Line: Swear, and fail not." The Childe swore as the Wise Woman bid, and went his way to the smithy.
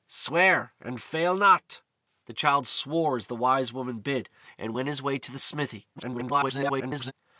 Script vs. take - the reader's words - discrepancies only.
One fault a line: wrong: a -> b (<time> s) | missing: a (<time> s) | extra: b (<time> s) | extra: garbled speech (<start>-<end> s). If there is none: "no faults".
extra: garbled speech (6.0-7.1 s)